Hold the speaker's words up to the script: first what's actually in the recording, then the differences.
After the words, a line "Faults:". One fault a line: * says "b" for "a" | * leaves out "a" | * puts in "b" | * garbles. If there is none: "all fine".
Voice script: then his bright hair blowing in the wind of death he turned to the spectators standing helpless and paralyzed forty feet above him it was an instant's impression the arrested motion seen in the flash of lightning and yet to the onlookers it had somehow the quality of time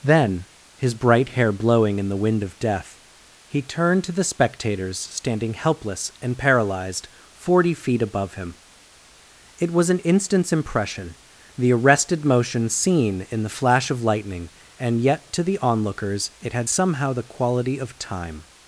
then his bright hair blowing in the wind of death he turned to the spectators standing helpless and paralyzed forty feet above him it was an instant's impression the arrested motion seen in the flash of lightning and yet to the onlookers it had somehow the quality of time
Faults:
all fine